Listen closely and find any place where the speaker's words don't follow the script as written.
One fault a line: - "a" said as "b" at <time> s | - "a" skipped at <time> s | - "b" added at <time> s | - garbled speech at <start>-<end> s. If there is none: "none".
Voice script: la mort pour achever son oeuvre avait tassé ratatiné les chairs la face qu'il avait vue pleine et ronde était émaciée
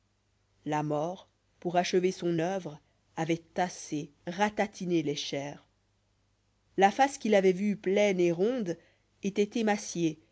none